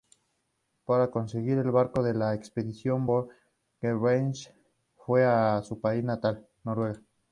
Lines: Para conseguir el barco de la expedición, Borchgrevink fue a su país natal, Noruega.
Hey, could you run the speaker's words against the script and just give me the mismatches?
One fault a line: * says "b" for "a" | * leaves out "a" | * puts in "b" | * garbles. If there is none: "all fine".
all fine